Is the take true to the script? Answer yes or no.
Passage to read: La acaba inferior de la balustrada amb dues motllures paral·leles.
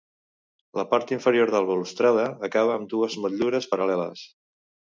no